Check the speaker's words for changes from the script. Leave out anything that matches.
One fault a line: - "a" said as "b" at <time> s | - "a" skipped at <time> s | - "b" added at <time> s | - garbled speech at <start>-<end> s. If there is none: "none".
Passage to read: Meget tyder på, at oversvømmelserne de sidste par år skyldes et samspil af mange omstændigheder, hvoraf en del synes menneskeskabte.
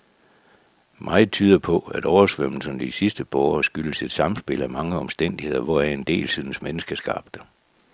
none